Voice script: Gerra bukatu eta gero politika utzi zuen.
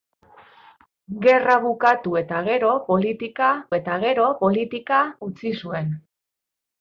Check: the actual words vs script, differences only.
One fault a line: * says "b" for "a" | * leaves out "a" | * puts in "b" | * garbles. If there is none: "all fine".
* puts in "eta gero politika"